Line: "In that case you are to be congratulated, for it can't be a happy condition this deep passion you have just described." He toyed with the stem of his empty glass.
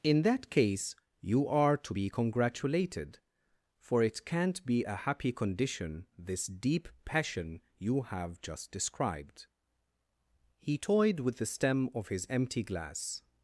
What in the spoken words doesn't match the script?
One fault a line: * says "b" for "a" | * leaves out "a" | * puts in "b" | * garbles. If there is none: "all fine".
all fine